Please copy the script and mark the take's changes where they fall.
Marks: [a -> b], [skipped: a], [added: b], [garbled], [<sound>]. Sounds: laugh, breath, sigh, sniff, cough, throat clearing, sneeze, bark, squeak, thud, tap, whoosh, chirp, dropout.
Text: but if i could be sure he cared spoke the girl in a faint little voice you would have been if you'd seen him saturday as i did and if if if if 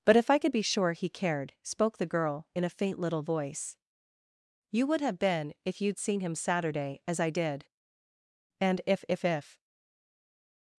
but if i could be sure he cared spoke the girl in a faint little voice you would have been if you'd seen him saturday as i did and if if if [skipped: if]